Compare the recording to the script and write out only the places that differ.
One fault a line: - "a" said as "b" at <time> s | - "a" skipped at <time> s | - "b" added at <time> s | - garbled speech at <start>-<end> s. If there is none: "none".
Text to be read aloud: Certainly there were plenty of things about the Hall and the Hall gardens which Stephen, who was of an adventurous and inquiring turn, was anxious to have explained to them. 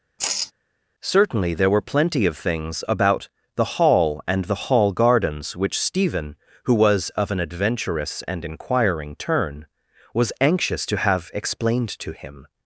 - "them" said as "him" at 12.1 s